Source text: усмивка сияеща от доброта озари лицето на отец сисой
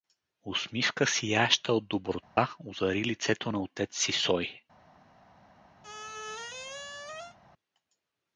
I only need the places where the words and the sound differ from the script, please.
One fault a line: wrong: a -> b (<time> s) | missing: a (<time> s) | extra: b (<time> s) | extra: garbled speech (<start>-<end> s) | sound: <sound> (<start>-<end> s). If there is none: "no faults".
sound: dropout (2.2-2.4 s)
sound: squeak (5.8-7.4 s)